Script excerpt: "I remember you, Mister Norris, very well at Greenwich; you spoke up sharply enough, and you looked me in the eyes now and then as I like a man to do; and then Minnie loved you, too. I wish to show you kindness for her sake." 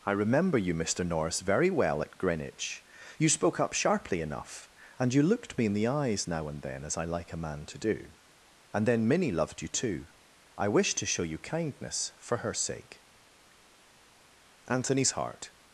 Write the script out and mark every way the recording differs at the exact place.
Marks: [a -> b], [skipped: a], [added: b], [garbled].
"I remember you, Mister Norris, very well at Greenwich; you spoke up sharply enough, and you looked me in the eyes now and then as I like a man to do; and then Minnie loved you, too. I wish to show you kindness for her sake." [added: Anthony's heart]